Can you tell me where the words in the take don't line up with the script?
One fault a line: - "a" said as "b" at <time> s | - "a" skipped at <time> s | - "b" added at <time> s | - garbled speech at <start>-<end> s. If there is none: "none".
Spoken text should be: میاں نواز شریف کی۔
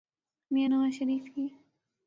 none